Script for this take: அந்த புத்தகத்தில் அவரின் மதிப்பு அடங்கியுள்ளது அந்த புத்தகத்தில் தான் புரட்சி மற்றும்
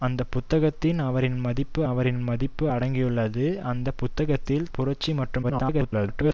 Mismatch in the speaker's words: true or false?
true